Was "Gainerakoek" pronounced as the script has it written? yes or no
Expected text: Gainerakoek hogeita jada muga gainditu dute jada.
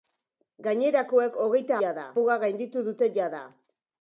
yes